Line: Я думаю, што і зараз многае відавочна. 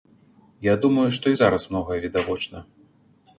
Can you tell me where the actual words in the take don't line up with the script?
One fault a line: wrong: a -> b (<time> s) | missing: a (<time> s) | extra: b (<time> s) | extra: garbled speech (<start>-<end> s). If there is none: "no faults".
no faults